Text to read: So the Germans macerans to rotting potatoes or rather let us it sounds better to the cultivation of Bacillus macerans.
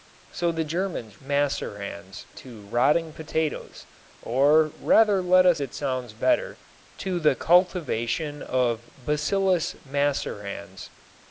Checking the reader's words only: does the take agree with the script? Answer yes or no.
yes